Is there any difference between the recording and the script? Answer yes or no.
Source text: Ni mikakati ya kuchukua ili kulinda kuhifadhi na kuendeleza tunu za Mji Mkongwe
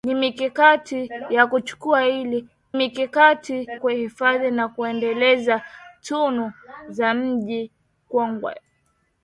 yes